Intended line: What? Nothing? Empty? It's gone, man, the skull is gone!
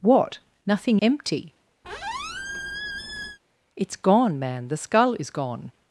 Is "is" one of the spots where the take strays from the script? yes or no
no